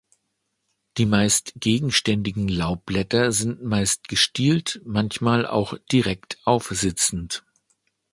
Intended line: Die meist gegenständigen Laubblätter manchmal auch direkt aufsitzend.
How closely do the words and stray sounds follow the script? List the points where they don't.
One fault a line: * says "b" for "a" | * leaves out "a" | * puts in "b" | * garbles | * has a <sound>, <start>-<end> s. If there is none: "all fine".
* puts in "sind meist gestielt"